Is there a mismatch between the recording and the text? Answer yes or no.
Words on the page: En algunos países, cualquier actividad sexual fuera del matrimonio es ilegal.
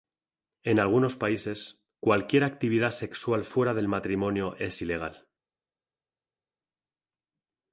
no